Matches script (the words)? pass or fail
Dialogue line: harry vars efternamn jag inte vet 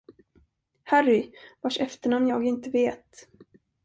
pass